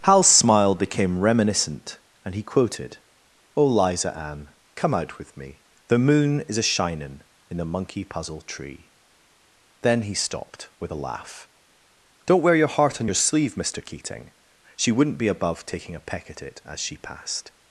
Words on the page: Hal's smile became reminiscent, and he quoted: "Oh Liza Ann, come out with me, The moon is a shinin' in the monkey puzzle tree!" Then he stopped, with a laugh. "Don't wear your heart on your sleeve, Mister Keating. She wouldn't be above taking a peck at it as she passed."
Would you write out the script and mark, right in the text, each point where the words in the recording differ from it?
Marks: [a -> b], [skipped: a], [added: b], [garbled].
Hal's smile became reminiscent, and he quoted: "Oh Liza Ann, come out with me, The moon is a shinin' in the monkey puzzle tree!" Then he stopped, with a laugh. "Don't wear your heart on your sleeve, Mister Keating. She wouldn't be above taking a peck at it as she passed."